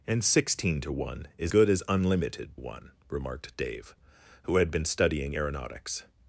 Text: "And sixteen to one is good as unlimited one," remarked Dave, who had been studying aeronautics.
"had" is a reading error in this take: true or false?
false